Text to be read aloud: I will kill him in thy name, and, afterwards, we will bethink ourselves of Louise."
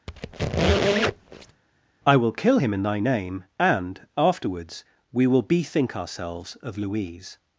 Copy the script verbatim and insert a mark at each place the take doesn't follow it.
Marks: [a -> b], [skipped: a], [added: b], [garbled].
I will kill him in thy name, and, afterwards, we will bethink ourselves of Louise."